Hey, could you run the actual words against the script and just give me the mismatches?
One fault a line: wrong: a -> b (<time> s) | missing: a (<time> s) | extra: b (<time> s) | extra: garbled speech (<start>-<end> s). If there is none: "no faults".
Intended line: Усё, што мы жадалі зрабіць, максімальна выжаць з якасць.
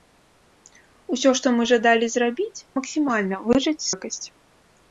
no faults